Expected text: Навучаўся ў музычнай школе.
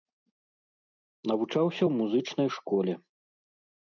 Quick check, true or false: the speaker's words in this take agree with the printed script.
true